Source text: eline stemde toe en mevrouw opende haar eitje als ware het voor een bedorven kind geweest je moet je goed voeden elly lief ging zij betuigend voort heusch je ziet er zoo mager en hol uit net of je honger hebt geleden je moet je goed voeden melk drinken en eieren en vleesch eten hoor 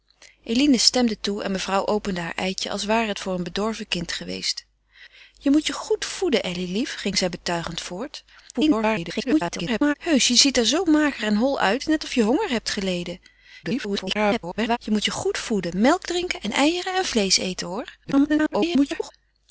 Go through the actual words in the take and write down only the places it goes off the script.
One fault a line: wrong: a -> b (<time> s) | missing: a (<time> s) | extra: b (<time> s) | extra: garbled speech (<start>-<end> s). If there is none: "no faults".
extra: garbled speech (8.5-9.9 s)
extra: garbled speech (13.6-14.8 s)
extra: garbled speech (18.0-19.1 s)